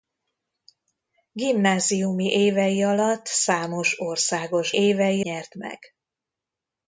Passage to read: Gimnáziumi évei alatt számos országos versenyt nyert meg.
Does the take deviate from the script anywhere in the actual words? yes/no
yes